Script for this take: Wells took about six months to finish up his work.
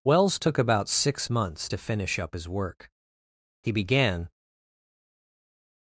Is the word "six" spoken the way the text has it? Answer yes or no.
yes